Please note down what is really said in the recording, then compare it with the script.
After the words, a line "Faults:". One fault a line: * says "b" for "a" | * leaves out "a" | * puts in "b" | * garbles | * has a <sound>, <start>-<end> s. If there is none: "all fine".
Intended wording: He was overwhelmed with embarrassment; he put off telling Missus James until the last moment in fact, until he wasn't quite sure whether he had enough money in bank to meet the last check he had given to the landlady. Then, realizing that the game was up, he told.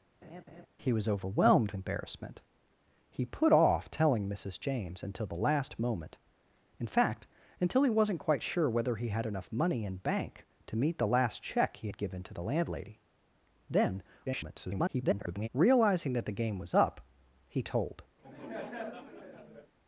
He was overwhelmed embarrassment; he put off telling Missus James until the last moment in fact, until he wasn't quite sure whether he had enough money in bank to meet the last check he had given to the landlady. Then, [garbled] realizing that the game was up, he told.
Faults:
* has a laugh, 0.2-0.7 s
* leaves out "with"
* garbles
* has a laugh, 18.2-19.7 s